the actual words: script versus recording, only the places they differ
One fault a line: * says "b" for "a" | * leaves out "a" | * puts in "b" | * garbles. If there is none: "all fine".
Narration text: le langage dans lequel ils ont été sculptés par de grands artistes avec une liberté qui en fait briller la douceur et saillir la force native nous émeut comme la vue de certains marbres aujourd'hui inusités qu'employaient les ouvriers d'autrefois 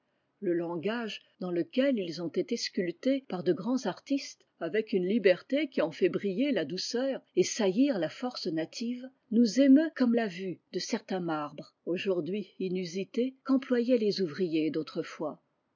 all fine